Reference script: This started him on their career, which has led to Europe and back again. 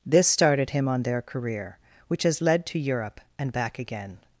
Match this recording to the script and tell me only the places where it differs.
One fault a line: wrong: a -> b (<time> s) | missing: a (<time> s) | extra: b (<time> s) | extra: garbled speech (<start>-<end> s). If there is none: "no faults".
no faults